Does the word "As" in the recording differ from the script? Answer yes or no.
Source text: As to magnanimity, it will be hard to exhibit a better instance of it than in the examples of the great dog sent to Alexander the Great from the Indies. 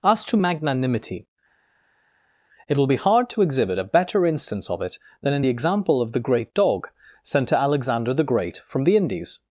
no